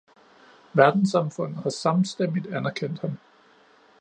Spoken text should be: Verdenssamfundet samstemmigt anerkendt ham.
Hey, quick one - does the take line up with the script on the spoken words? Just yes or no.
no